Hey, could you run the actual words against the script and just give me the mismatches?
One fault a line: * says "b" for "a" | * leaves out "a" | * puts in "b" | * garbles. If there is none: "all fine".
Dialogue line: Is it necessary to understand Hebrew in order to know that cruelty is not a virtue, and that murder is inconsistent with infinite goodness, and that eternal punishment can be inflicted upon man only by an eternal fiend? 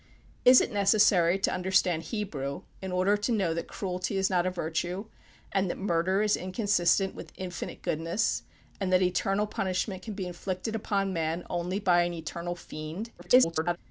* garbles